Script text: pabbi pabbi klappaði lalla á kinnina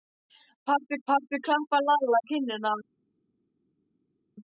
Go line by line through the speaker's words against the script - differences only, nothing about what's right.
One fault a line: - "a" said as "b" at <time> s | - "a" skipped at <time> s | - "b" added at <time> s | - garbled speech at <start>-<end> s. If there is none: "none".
none